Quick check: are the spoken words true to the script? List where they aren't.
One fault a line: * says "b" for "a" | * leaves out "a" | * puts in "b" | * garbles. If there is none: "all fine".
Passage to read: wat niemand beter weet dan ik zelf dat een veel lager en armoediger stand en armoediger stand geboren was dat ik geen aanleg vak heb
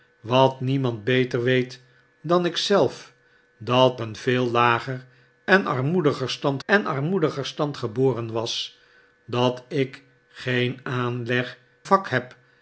all fine